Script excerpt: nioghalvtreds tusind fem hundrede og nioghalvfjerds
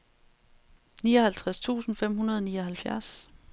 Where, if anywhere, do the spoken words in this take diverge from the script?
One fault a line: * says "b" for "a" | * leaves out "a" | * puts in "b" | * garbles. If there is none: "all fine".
all fine